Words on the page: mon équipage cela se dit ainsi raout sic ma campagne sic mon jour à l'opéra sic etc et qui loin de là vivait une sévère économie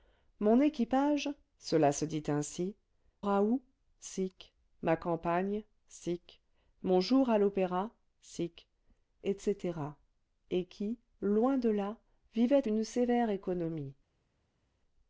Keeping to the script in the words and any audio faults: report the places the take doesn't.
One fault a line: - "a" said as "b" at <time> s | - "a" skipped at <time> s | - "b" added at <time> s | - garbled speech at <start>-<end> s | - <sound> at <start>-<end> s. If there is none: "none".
none